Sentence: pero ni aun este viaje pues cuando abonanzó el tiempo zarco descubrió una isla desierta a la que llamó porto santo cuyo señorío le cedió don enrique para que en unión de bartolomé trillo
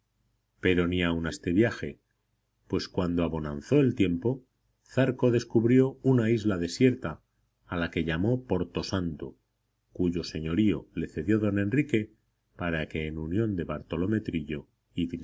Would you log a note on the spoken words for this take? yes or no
no